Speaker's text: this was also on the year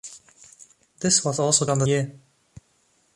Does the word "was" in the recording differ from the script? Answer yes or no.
no